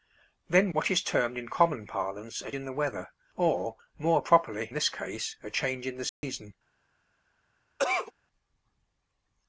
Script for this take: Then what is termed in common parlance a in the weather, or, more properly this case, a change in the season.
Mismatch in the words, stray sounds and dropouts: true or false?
true